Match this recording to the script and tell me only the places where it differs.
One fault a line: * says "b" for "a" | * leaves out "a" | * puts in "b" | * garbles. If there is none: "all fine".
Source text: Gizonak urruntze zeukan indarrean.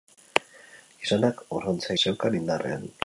all fine